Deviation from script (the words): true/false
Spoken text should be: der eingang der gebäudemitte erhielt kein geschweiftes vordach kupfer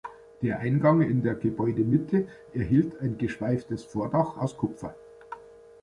true